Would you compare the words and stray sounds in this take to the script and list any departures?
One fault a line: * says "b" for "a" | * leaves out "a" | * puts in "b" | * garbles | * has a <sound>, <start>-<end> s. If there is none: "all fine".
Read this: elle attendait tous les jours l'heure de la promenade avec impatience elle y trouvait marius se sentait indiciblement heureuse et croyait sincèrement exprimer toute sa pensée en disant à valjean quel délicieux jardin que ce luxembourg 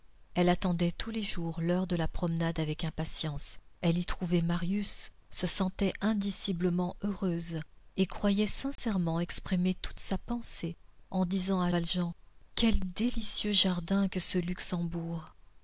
* has a dropout, 8.8-8.8 s